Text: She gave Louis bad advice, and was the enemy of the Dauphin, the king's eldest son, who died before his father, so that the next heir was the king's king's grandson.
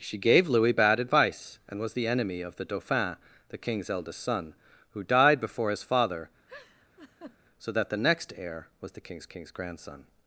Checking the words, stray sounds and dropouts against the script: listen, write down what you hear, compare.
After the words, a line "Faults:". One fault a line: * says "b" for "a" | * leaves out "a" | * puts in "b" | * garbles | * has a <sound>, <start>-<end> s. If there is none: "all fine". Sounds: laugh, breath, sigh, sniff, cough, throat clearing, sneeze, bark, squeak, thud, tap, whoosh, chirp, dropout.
She gave Louis bad advice, and was the enemy of the Dauphin, the king's eldest son, who died before his father, so that the next heir was the king's king's grandson.
Faults:
* has a laugh, 6.5-7.4 s